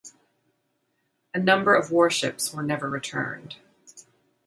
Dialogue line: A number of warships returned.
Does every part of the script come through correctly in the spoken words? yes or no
no